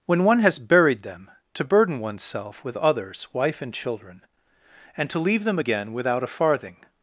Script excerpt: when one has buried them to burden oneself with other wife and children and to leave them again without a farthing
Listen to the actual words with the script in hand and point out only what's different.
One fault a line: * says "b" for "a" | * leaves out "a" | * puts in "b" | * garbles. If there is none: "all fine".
* says "others" for "other"